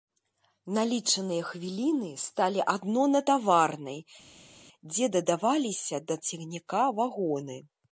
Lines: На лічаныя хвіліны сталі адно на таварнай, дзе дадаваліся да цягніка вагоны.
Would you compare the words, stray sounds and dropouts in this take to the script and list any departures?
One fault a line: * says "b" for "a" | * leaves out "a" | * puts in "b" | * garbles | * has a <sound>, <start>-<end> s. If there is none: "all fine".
all fine